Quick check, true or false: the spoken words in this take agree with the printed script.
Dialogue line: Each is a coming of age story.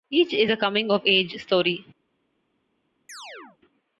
true